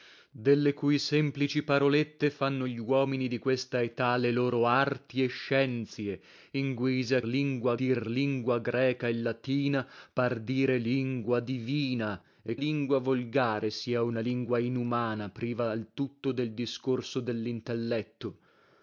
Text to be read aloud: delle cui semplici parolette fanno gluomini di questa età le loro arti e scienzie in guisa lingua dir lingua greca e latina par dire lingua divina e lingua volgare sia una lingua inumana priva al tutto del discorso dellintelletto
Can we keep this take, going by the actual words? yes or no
yes